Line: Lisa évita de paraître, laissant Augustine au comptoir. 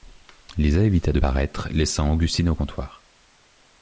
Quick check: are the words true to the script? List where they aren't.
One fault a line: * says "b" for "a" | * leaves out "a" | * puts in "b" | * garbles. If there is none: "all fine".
all fine